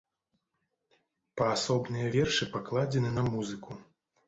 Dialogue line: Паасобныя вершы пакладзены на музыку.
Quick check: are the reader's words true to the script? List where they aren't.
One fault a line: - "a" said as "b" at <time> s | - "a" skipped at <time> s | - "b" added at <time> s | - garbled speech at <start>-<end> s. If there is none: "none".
none